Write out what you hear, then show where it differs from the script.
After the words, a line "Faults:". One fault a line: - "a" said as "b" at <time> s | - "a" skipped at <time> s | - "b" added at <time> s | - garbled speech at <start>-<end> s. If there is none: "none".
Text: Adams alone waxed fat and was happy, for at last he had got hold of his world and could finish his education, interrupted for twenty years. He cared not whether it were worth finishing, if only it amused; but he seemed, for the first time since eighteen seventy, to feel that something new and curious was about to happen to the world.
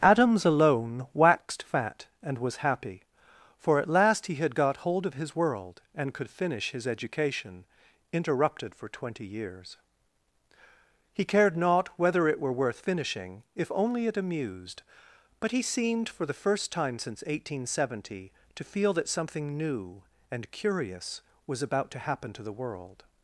Adams alone waxed fat and was happy, for at last he had got hold of his world and could finish his education, interrupted for twenty years. He cared not whether it were worth finishing, if only it amused; but he seemed, for the first time since eighteen seventy, to feel that something new and curious was about to happen to the world.
Faults:
none